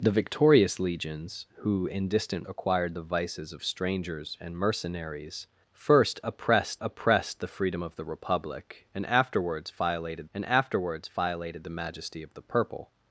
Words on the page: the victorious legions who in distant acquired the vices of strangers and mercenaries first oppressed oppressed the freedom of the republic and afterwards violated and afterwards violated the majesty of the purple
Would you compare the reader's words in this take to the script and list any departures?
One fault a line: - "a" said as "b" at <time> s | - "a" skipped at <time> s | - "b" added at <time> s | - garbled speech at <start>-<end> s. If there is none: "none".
none